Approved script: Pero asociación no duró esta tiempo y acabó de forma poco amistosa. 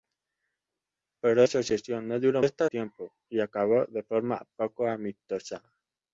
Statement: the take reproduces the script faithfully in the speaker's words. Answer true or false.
true